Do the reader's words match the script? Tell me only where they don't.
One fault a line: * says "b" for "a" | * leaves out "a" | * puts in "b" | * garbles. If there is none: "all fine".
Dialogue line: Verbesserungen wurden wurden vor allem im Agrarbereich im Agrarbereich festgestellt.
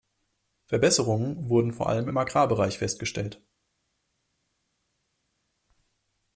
* leaves out "wurden"
* leaves out "im Agrarbereich"